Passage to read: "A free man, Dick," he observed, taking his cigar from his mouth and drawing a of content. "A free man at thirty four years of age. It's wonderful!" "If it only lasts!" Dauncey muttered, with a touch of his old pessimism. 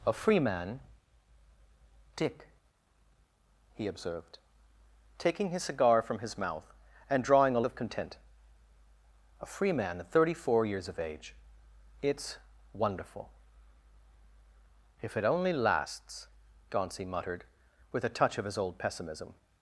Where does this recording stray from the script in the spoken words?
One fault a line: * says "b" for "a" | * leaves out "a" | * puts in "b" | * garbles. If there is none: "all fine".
all fine